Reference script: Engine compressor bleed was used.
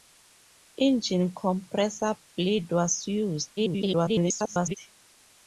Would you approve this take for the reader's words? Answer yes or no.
no